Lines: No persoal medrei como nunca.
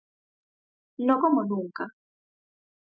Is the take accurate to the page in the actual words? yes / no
no